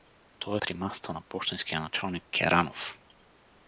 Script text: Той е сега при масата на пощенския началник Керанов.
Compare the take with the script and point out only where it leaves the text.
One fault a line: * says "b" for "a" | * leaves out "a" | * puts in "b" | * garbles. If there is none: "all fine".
* leaves out "сега"